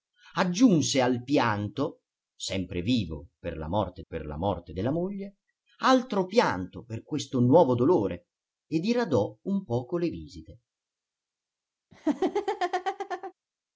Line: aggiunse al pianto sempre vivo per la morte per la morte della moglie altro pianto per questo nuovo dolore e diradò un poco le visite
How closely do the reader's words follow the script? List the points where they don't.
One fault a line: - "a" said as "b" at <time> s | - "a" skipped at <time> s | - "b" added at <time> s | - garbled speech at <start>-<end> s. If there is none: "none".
none